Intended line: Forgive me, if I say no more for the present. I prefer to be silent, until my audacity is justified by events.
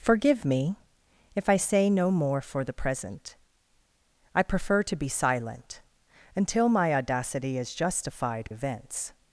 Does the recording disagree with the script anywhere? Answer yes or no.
yes